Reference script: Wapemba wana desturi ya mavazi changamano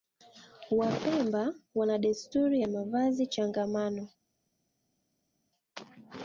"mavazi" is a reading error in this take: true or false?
false